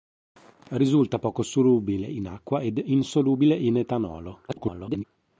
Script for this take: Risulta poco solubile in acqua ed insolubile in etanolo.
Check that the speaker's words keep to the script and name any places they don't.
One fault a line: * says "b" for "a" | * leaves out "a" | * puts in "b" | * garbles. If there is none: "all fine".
* garbles